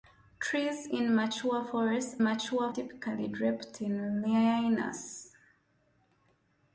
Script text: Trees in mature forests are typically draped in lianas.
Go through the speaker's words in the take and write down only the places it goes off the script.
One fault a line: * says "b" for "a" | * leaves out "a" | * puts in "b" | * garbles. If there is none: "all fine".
* says "mature" for "are"